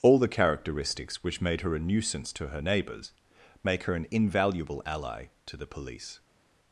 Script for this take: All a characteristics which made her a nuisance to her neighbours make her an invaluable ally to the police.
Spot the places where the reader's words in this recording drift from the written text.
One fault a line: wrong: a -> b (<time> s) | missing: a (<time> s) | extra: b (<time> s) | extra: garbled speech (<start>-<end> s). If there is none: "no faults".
wrong: a -> the (0.2 s)